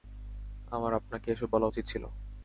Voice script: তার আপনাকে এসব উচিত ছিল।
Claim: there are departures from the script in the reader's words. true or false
true